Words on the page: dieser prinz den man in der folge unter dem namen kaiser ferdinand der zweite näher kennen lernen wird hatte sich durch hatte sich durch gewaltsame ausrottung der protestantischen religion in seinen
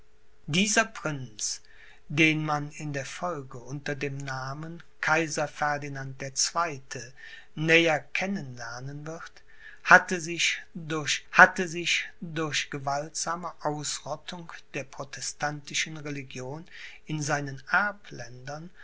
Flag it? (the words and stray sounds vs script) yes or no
no